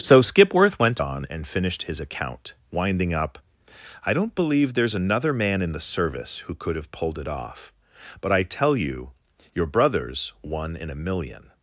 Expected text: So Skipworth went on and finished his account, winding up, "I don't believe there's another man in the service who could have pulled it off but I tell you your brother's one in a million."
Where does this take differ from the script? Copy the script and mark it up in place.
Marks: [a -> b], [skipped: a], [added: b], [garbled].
So Skipworth went on and finished his account, winding up, "I don't believe there's another man in the service who could have pulled it off but I tell you your brother's one in a million."